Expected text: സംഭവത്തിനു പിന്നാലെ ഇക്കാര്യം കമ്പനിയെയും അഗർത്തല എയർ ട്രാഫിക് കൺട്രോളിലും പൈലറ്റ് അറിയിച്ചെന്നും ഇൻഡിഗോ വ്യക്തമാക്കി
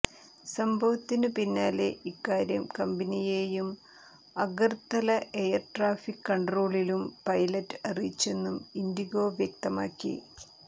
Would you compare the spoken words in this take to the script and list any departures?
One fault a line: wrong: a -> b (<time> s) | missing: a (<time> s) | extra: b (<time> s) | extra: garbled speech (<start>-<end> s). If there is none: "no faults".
no faults